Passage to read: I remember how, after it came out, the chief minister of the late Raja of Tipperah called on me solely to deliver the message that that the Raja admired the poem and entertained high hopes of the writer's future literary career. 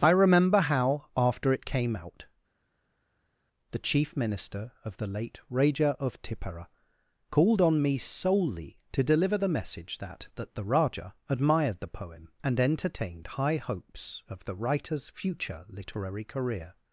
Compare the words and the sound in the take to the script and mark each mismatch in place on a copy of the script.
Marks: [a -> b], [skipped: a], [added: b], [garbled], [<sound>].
I remember how, after it came out, the chief minister of the late Raja of Tipperah called on me solely to deliver the message that that the Raja admired the poem and entertained high hopes of the writer's future literary career.